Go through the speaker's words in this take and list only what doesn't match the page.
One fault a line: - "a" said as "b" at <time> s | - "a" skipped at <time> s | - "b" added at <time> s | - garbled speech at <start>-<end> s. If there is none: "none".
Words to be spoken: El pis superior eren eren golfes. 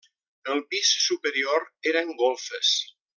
- "eren" skipped at 2.1 s